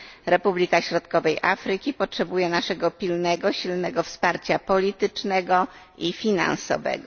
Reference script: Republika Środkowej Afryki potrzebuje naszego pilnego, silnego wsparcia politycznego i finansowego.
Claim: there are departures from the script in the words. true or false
false